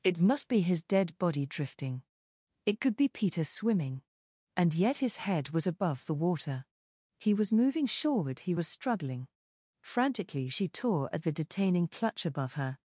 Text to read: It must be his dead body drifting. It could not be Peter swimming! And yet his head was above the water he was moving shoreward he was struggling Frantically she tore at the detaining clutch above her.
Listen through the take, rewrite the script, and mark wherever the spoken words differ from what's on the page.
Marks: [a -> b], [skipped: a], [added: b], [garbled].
It must be his dead body drifting. It could [skipped: not] be Peter swimming! And yet his head was above the water he was moving shoreward he was struggling Frantically she tore at the detaining clutch above her.